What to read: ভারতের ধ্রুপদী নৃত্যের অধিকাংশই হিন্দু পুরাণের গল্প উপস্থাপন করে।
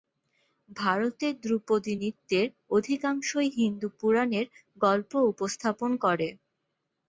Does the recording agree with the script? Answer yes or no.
yes